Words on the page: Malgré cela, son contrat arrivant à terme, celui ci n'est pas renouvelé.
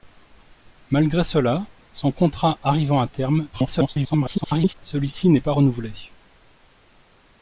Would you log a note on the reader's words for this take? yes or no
yes